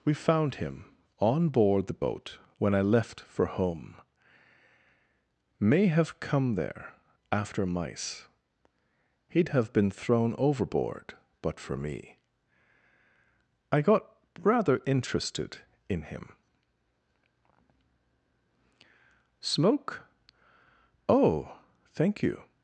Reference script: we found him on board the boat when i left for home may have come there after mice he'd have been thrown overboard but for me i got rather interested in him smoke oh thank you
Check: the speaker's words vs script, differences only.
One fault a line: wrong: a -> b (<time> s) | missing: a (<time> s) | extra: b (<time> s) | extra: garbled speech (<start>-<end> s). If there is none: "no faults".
no faults